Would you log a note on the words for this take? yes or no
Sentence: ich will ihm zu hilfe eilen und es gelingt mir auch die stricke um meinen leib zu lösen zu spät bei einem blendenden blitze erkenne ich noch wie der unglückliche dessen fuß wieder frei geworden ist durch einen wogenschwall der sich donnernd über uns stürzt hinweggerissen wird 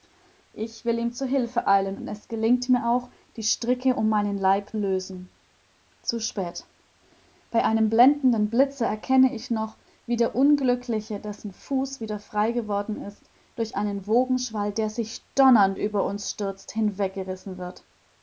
yes